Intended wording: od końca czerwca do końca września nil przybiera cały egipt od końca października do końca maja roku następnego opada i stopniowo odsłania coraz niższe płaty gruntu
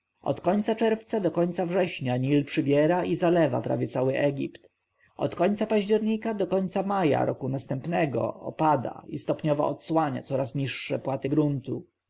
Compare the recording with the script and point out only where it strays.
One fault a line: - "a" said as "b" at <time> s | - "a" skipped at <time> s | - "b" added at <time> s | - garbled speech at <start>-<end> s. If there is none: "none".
- "i zalewa prawie" added at 3.0 s